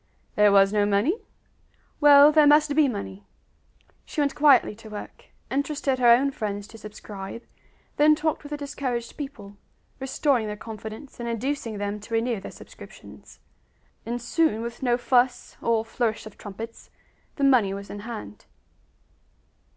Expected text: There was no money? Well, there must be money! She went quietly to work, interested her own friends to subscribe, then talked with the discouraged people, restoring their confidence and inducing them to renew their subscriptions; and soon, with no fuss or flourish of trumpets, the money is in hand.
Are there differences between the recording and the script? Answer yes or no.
yes